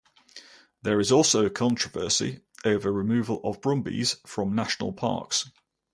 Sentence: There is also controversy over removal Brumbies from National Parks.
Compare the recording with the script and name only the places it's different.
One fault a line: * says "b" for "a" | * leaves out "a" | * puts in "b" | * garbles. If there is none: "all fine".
* puts in "of"